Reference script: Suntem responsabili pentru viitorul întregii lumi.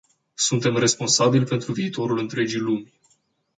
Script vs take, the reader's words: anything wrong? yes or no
no